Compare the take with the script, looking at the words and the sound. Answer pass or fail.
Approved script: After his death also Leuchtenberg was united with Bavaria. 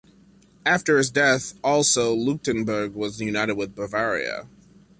pass